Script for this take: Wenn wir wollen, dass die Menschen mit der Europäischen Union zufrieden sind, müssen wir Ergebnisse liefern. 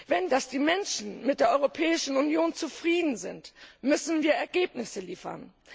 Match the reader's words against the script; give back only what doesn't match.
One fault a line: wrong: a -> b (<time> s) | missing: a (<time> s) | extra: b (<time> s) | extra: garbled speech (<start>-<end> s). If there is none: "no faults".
missing: wir wollen (0.3 s)